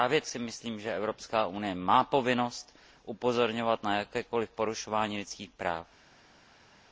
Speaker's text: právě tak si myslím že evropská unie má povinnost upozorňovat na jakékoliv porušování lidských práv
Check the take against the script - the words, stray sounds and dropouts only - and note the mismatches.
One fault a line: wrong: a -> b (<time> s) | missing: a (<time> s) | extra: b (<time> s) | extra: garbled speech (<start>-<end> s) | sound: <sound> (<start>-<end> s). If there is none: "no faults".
missing: tak (0.2 s)